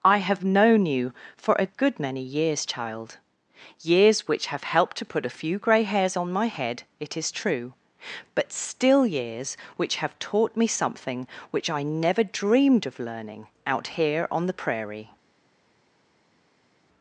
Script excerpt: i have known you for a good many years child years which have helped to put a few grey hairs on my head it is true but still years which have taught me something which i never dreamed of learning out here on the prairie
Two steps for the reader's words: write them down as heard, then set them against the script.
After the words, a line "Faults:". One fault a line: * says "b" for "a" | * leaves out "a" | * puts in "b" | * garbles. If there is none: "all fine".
i have known you for a good many years child years which have helped to put a few grey hairs on my head it is true but still years which have taught me something which i never dreamed of learning out here on the prairie
Faults:
all fine